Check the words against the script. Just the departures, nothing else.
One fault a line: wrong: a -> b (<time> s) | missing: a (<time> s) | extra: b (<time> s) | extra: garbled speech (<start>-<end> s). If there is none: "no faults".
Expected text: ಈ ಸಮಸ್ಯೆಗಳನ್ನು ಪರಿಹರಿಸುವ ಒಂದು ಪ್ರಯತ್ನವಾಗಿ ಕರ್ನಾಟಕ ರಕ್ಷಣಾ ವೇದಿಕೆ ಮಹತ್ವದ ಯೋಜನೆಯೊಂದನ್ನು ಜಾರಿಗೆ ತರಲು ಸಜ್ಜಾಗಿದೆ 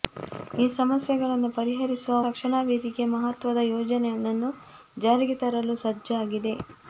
missing: ಒಂದು ಪ್ರಯತ್ನವಾಗಿ ಕರ್ನಾಟಕ (2.1 s)